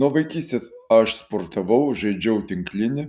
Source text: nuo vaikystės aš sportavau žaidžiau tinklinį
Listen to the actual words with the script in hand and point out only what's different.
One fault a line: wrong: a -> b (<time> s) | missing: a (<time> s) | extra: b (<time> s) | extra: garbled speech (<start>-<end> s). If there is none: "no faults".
no faults